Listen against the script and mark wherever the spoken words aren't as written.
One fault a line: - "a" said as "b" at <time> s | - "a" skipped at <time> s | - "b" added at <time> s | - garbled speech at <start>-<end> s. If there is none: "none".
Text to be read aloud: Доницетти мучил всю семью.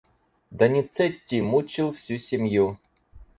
none